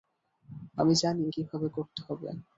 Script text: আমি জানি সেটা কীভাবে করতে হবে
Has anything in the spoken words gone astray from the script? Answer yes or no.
yes